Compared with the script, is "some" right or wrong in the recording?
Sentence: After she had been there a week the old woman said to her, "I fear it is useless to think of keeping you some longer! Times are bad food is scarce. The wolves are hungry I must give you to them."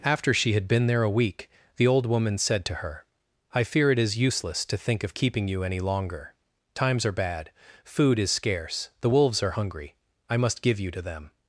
wrong